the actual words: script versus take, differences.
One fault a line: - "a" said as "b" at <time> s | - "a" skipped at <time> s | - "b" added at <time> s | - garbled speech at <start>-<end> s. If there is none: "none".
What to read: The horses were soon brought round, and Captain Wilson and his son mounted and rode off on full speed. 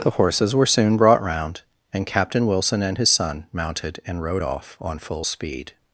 none